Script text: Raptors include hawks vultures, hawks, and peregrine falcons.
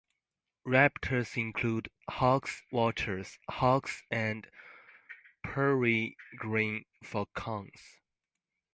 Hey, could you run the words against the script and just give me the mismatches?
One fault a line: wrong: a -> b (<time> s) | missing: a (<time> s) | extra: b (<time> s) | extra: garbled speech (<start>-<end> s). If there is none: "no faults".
no faults